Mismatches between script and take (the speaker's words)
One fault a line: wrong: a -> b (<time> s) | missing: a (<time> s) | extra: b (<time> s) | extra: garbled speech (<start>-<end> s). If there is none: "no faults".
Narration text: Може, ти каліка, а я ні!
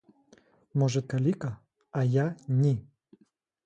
missing: ти (1.0 s)